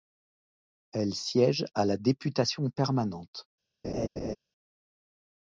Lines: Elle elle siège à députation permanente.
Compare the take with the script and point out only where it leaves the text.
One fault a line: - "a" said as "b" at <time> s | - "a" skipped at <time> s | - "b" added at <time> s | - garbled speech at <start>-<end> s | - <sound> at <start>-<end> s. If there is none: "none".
- "elle" skipped at 1.1 s
- "la" added at 1.9 s
- laugh at 3.8-4.4 s